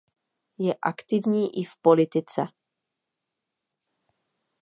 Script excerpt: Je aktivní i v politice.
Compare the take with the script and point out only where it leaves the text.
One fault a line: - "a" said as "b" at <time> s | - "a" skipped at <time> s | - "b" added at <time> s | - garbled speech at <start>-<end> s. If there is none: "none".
none